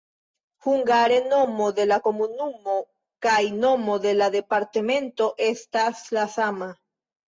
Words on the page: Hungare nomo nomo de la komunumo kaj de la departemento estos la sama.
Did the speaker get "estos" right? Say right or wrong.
wrong